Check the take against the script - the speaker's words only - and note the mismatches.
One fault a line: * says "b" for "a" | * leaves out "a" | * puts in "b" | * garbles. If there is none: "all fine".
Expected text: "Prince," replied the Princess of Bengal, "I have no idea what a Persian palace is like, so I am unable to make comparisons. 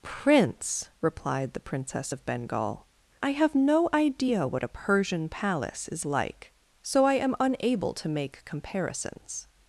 all fine